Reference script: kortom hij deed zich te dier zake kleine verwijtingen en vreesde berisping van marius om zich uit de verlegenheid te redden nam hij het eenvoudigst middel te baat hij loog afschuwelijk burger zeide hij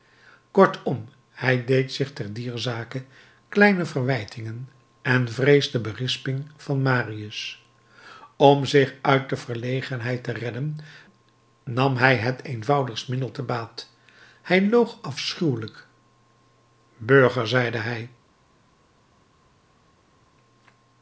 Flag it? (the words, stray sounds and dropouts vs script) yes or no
no